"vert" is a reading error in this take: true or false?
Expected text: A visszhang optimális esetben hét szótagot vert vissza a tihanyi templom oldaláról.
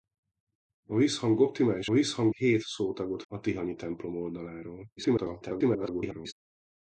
true